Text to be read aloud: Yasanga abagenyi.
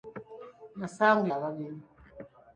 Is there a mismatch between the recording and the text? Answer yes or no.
no